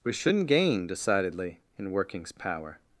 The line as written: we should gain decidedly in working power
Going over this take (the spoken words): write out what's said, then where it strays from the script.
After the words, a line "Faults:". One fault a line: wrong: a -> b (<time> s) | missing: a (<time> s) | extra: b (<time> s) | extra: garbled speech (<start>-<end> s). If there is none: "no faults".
we shouldn't gain decidedly in workings power
Faults:
wrong: should -> shouldn't (0.1 s)
wrong: working -> workings (1.9 s)